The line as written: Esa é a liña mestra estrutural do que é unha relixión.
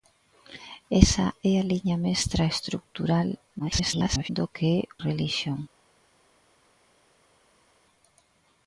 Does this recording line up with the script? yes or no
no